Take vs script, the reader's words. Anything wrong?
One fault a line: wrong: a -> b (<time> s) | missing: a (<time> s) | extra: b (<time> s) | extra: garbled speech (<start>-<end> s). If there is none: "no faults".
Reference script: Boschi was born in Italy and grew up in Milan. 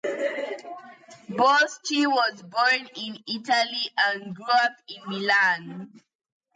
no faults